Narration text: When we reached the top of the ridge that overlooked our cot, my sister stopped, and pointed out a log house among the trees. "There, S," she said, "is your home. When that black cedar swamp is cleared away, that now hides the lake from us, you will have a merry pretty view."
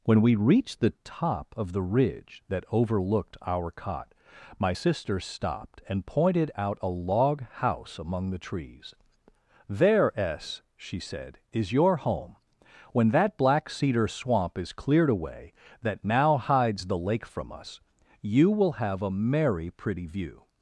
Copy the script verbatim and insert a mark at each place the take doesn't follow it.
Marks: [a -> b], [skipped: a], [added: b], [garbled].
When we reached the top of the ridge that overlooked our cot, my sister stopped, and pointed out a log house among the trees. "There, S," she said, "is your home. When that black cedar swamp is cleared away, that now hides the lake from us, you will have a merry pretty view."